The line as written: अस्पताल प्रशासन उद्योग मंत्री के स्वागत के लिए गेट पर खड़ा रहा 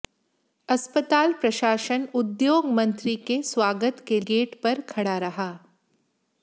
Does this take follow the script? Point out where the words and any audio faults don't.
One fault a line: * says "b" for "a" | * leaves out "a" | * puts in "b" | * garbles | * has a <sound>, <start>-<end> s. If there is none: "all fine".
* leaves out "लिए"